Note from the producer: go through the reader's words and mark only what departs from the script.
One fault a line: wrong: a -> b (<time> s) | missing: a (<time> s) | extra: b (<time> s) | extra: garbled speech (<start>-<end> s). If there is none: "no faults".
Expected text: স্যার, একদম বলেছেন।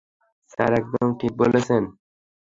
extra: ঠিক (1.2 s)